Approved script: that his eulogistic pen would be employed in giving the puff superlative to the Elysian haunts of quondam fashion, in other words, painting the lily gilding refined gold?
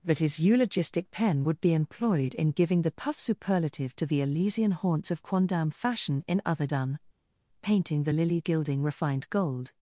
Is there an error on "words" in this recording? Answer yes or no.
yes